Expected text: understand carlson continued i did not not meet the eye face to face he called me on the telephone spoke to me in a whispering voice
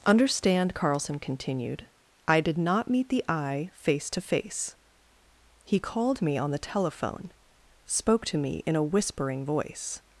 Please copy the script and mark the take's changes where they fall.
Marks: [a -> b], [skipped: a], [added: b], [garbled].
understand carlson continued i did not [skipped: not] meet the eye face to face he called me on the telephone spoke to me in a whispering voice